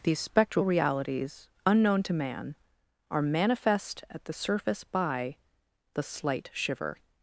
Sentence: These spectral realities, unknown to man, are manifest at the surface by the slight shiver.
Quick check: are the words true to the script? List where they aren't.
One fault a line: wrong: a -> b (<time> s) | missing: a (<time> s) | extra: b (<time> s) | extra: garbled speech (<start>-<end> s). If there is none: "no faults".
no faults